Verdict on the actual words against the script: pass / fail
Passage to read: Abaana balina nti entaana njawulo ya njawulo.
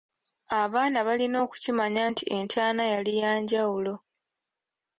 fail